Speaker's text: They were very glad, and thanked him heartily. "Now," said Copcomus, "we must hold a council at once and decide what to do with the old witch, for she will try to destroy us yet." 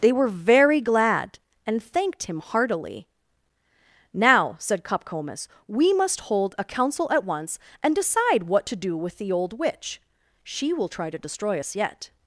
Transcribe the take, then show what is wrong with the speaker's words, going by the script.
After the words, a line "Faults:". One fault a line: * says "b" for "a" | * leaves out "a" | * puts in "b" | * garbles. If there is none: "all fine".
They were very glad, and thanked him heartily. "Now," said Copcomus, "we must hold a council at once and decide what to do with the old witch, she will try to destroy us yet."
Faults:
* leaves out "for"